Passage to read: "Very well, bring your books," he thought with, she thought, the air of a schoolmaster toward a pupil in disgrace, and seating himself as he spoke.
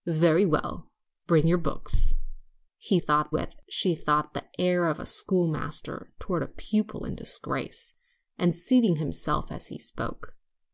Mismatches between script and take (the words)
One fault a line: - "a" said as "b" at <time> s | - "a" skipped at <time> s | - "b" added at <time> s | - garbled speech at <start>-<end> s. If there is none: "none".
none